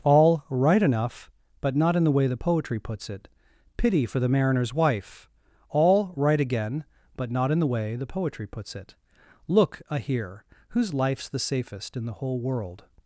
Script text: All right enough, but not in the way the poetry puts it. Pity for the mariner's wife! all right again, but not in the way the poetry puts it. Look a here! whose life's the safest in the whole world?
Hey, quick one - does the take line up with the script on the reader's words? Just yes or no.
yes